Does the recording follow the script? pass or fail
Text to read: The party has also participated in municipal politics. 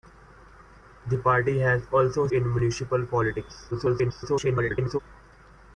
fail